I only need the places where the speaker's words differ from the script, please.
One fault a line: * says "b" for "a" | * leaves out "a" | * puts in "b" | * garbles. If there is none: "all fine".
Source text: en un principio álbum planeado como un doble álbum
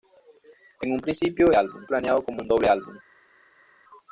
all fine